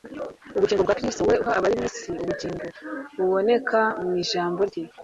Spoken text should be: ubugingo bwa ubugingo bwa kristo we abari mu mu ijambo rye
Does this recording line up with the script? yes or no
no